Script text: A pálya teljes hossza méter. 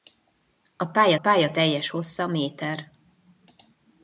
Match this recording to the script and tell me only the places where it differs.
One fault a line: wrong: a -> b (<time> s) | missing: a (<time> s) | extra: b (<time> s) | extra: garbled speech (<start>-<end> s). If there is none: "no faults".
extra: pálya (1.1 s)